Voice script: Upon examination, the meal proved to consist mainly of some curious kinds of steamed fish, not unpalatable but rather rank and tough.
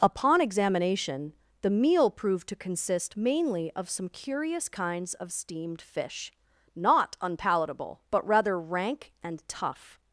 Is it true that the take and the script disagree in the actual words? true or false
false